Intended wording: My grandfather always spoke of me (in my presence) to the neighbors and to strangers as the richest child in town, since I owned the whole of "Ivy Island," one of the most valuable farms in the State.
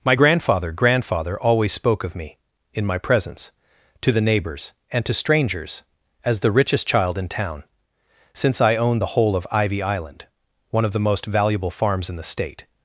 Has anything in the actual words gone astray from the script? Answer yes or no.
yes